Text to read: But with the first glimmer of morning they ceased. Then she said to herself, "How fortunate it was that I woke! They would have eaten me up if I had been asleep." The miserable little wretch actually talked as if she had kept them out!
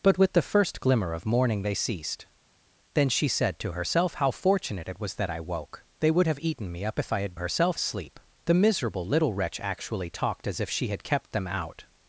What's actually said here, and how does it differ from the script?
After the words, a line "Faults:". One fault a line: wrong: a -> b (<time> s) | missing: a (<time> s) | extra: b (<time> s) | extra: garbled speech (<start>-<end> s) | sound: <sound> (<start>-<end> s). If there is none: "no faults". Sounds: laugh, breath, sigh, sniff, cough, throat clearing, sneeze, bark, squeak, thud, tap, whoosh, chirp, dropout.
But with the first glimmer of morning they ceased. Then she said to herself, "How fortunate it was that I woke! They would have eaten me up if I had herself asleep." The miserable little wretch actually talked as if she had kept them out!
Faults:
wrong: been -> herself (7.4 s)